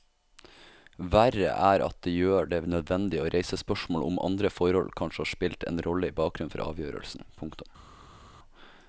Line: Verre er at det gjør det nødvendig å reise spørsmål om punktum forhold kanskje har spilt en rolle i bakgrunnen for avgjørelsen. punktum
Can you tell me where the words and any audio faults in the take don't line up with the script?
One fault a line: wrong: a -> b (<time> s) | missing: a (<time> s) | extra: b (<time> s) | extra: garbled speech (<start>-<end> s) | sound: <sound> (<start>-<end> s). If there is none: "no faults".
wrong: punktum -> andre (4.2 s)